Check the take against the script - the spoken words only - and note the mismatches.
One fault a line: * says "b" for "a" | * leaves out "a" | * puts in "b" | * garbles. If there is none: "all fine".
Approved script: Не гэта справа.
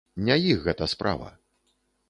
* puts in "іх"